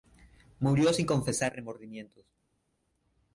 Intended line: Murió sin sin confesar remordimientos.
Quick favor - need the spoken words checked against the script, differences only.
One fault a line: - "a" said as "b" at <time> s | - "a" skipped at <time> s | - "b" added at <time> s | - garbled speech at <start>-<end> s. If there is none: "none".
- "sin" skipped at 1.1 s